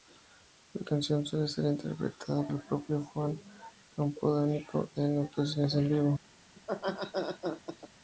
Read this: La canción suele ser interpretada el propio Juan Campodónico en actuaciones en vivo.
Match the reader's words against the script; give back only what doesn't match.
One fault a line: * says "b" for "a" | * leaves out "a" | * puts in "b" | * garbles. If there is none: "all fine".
all fine